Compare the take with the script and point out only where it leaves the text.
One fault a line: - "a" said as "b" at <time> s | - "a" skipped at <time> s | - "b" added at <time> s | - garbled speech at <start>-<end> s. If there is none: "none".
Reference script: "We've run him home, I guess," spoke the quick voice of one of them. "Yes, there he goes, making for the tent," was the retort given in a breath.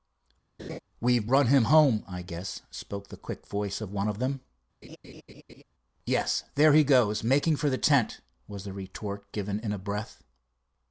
none